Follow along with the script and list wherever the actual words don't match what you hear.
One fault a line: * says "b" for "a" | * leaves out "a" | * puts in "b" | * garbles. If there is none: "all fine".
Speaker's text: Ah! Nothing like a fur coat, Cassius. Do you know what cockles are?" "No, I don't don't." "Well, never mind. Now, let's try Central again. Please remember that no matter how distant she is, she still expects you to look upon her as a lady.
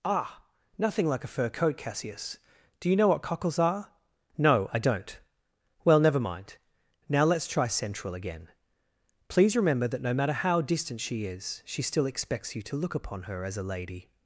* leaves out "don't"